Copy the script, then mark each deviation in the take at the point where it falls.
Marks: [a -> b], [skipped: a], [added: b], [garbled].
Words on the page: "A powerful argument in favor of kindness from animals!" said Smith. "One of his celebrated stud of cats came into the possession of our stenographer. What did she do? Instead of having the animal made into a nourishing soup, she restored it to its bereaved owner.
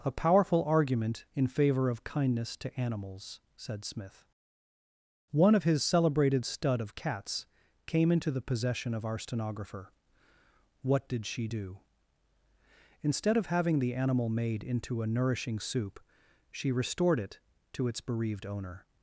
"A powerful argument in favor of kindness [from -> to] animals!" said Smith. "One of his celebrated stud of cats came into the possession of our stenographer. What did she do? Instead of having the animal made into a nourishing soup, she restored it to its bereaved owner.